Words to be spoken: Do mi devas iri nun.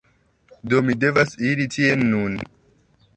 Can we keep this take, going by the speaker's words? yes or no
no